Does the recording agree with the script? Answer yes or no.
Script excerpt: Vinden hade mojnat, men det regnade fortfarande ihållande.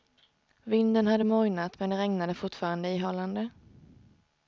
yes